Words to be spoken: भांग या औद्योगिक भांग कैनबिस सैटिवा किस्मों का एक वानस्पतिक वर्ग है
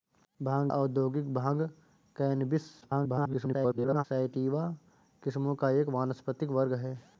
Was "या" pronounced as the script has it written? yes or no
no